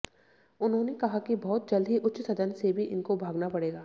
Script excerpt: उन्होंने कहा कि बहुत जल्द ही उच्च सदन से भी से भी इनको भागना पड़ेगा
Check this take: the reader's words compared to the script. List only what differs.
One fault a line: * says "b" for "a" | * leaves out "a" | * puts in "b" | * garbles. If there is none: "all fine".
* leaves out "से भी"